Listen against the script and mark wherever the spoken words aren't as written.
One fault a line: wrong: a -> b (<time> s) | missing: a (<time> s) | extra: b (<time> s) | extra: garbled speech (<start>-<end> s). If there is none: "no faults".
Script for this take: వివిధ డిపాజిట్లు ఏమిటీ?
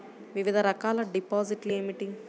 extra: రకాల (0.6 s)